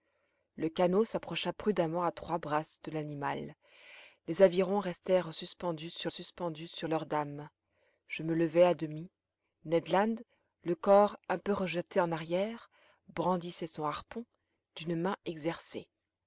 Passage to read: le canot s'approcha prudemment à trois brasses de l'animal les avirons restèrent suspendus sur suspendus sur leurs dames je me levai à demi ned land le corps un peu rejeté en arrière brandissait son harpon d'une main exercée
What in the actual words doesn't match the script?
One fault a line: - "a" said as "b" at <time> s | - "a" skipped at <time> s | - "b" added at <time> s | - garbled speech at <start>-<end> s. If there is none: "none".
none